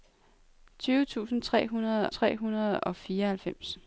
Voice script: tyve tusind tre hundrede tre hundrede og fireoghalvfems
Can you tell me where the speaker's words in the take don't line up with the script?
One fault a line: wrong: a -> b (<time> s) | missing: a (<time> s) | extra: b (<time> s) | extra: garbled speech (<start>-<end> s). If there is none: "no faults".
no faults